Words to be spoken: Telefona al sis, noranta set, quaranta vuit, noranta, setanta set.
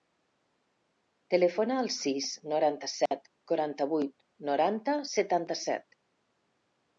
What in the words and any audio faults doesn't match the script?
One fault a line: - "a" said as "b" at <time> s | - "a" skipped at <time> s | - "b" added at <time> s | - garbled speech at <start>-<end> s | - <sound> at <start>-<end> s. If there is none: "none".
- dropout at 3.1-3.1 s